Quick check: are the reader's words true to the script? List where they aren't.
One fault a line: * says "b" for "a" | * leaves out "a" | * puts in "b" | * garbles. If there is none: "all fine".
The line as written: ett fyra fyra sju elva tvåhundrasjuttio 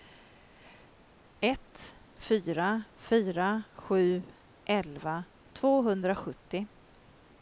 all fine